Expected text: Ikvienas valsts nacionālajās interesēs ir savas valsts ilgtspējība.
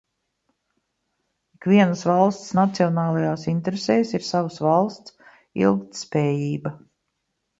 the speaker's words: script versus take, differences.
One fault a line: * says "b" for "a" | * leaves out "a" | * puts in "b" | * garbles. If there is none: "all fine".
all fine